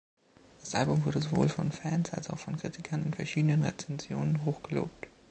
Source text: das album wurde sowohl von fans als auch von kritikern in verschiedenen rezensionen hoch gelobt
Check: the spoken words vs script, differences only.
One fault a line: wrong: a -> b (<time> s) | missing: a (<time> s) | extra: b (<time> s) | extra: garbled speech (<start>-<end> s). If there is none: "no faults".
no faults